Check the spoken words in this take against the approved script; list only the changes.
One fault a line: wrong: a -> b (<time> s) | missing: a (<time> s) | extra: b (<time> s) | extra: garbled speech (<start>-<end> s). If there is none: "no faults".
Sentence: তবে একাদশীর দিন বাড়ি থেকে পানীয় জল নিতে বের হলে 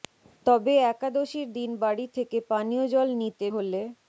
missing: বের (3.5 s)